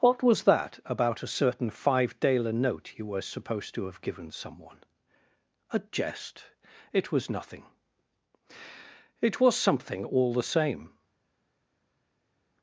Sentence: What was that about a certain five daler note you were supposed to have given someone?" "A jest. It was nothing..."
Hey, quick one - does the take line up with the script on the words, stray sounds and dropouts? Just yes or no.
no